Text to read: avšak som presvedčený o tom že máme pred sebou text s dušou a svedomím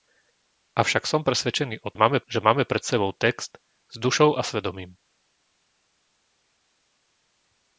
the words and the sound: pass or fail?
fail